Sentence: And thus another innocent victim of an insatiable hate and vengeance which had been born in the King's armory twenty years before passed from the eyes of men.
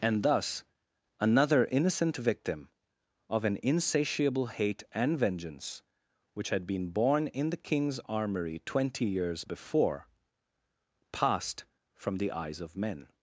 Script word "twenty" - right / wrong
right